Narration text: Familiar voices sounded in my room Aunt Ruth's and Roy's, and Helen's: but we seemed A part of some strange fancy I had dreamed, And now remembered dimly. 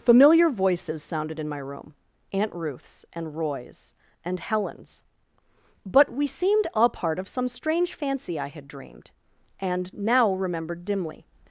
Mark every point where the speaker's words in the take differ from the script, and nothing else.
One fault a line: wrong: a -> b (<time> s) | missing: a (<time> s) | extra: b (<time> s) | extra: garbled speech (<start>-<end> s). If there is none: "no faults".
no faults